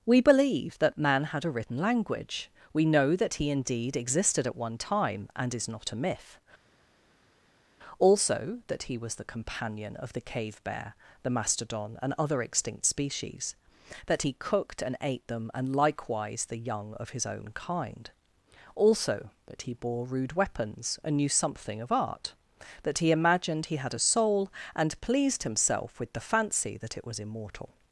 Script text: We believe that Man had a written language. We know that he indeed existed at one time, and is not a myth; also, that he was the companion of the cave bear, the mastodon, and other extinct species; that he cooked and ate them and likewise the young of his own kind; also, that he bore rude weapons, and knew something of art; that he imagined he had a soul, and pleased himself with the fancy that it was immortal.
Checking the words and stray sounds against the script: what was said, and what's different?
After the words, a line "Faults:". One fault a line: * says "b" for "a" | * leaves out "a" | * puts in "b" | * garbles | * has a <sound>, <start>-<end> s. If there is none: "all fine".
We believe that Man had a written language. We know that he indeed existed at one time, and is not a myth; also, that he was the companion of the cave bear, the mastodon, and other extinct species; that he cooked and ate them and likewise the young of his own kind; also, that he bore rude weapons, and knew something of art; that he imagined he had a soul, and pleased himself with the fancy that it was immortal.
Faults:
all fine